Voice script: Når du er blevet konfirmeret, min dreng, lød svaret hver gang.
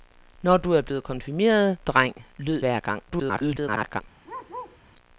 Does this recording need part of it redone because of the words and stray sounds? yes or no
yes